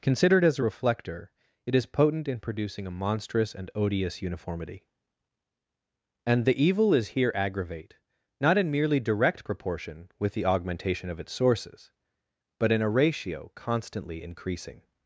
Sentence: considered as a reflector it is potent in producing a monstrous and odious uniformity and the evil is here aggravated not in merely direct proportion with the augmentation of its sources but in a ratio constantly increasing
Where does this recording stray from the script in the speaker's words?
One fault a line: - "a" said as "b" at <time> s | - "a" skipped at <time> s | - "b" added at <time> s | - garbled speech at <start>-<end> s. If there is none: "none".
- "aggravated" said as "aggravate" at 7.3 s